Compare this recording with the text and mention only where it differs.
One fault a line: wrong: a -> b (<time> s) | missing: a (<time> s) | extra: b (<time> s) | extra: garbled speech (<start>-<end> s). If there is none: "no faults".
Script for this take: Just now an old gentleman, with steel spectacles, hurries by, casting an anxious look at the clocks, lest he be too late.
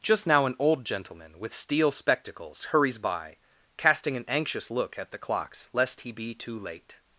no faults